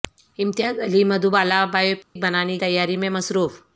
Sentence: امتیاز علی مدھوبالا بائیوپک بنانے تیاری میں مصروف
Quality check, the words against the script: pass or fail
pass